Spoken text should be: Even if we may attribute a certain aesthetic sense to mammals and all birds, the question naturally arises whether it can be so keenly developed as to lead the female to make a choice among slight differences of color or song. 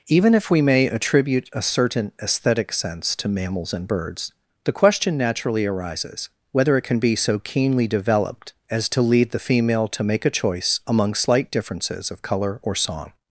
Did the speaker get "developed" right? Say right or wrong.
right